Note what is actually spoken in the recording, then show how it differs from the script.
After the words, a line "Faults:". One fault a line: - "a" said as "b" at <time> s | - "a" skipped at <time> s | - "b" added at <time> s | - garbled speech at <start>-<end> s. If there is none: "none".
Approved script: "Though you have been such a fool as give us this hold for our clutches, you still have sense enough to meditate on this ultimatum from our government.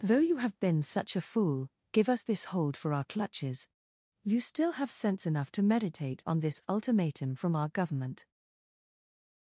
"Though you have been such a fool give us this hold for our clutches, you still have sense enough to meditate on this ultimatum from our government.
Faults:
- "as" skipped at 1.7 s